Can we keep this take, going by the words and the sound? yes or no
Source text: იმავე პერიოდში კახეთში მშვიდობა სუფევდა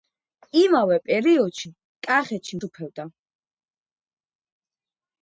no